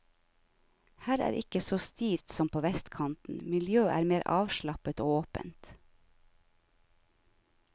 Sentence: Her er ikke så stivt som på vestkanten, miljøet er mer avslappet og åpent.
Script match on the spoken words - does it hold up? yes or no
yes